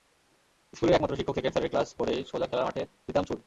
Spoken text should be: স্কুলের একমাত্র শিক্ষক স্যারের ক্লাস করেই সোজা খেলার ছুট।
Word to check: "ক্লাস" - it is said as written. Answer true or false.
true